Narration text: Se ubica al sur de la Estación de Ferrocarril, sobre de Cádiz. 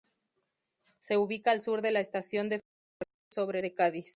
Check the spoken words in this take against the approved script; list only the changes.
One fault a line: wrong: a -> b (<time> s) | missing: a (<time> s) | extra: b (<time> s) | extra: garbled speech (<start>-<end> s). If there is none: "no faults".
no faults